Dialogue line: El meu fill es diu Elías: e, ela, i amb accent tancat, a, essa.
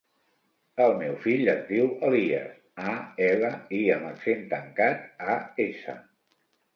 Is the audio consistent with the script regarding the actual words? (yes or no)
yes